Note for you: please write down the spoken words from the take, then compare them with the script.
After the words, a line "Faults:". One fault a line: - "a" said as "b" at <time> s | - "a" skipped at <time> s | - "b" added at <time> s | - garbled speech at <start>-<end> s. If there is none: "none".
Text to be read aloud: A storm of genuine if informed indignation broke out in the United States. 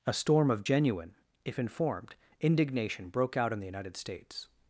A storm of genuine if informed indignation broke out in the United States.
Faults:
none